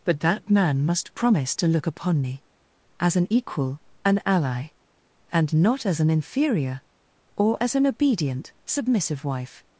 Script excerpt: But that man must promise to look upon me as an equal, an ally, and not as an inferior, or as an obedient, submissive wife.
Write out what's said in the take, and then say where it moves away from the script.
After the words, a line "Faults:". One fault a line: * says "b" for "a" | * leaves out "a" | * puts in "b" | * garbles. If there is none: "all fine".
But that man must promise to look upon me as an equal, an ally, and not as an inferior, or as an obedient, submissive wife.
Faults:
all fine